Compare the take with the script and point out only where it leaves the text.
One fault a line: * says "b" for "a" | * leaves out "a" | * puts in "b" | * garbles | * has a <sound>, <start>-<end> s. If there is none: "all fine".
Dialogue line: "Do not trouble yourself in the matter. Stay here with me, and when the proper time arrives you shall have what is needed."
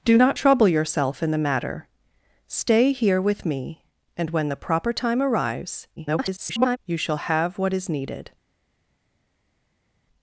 * garbles